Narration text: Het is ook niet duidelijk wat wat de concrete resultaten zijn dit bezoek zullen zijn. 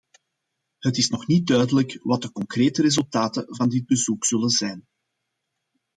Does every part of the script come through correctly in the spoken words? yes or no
no